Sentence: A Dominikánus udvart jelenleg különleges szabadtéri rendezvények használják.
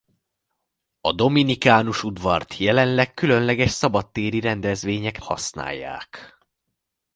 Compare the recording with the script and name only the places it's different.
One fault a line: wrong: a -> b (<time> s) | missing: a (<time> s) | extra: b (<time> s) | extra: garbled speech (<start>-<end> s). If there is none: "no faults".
no faults